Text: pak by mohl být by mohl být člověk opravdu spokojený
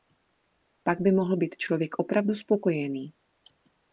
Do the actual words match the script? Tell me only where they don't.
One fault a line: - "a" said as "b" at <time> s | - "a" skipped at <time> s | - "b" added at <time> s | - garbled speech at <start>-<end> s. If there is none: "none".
- "by mohl být" skipped at 1.6 s